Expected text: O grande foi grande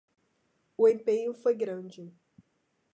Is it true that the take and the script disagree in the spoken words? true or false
true